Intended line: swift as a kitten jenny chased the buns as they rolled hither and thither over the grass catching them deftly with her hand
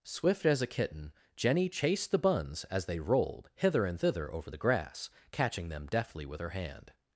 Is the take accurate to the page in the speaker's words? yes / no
yes